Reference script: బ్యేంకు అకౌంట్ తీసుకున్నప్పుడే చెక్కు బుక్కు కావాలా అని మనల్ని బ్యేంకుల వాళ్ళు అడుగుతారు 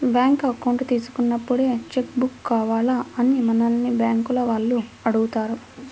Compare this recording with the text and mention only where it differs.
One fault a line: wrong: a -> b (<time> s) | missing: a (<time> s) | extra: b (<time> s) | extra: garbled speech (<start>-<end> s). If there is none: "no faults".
no faults